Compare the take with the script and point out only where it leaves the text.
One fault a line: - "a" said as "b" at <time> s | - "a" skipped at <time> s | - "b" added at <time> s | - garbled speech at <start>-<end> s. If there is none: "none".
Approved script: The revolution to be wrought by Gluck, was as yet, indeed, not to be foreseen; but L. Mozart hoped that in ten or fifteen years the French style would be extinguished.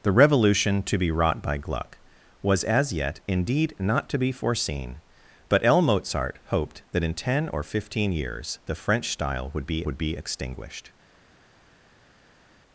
- "would be" added at 9.8 s